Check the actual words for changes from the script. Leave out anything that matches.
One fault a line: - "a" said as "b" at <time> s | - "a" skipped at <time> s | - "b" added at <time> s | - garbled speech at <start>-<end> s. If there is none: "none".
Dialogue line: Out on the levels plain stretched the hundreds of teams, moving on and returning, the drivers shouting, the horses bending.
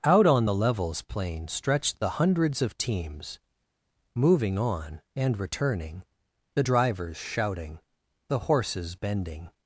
none